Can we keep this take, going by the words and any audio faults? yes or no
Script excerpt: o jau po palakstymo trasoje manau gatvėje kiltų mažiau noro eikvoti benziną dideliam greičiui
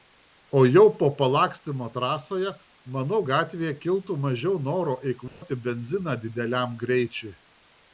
no